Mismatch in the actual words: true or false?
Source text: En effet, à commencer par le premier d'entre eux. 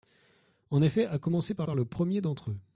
true